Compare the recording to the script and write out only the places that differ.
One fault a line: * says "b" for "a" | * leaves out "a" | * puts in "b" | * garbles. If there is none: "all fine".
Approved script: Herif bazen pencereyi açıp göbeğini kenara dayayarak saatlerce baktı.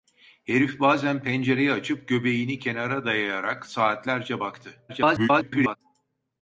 * garbles